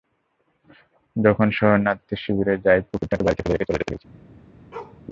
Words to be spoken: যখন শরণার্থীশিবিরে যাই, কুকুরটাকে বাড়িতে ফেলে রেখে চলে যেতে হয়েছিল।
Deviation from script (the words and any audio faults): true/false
true